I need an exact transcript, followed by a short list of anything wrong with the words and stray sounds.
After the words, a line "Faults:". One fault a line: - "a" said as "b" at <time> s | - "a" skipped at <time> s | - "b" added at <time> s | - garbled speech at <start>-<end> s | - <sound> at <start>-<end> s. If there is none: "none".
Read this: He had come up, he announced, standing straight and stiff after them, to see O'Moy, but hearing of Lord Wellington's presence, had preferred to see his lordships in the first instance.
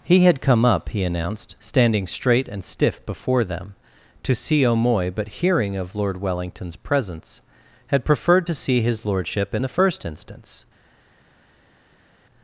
He had come up, he announced, standing straight and stiff before them, to see O'Moy, but hearing of Lord Wellington's presence, had preferred to see his lordship in the first instance.
Faults:
- "after" said as "before" at 3.0 s
- "lordships" said as "lordship" at 9.0 s